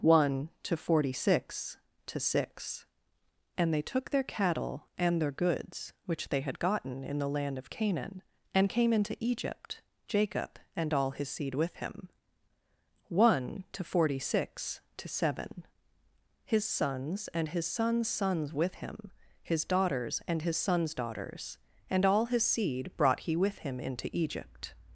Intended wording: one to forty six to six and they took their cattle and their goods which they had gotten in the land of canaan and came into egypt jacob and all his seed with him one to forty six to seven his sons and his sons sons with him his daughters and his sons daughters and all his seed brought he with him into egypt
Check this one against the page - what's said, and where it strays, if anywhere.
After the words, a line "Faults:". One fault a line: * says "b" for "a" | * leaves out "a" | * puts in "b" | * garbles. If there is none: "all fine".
one to forty six to six and they took their cattle and their goods which they had gotten in the land of canaan and came into egypt jacob and all his seed with him one to forty six to seven his sons and his sons sons with him his daughters and his sons daughters and all his seed brought he with him into egypt
Faults:
all fine